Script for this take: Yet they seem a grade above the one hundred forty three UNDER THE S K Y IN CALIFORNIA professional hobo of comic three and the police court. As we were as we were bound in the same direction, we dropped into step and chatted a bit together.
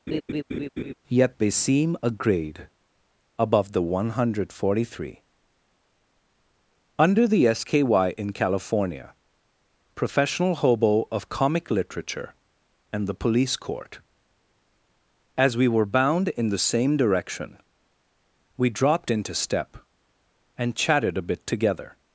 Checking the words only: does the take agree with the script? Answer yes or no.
no